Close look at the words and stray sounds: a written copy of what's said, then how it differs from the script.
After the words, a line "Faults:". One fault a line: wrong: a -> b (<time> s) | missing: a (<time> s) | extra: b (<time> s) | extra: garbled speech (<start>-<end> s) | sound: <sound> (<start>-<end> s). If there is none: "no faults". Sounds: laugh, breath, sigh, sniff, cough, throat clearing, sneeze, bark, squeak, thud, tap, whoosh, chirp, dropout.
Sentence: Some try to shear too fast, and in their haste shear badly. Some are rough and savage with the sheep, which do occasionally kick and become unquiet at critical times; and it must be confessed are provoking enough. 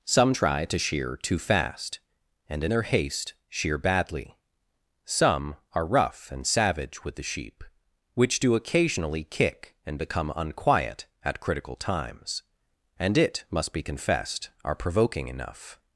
Some try to shear too fast, and in their haste shear badly. Some are rough and savage with the sheep, which do occasionally kick and become unquiet at critical times; and it must be confessed are provoking enough.
Faults:
no faults